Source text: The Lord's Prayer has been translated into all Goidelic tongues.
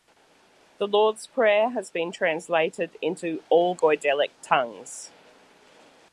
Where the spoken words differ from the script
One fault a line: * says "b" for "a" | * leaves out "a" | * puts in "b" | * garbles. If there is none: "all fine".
all fine